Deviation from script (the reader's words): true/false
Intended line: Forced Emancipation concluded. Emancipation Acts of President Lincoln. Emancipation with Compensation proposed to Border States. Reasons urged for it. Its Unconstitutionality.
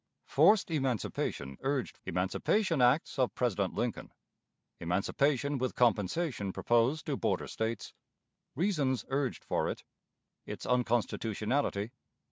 true